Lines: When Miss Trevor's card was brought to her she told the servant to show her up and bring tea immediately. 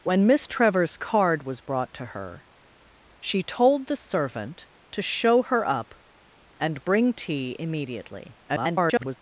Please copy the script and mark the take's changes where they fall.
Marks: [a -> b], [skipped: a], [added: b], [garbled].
When Miss Trevor's card was brought to her she told the servant to show her up and bring tea immediately. [garbled]